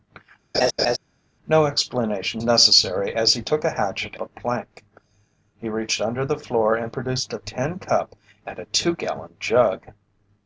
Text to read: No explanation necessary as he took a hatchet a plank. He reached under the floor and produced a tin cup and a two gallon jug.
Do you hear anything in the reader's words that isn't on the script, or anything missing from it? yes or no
no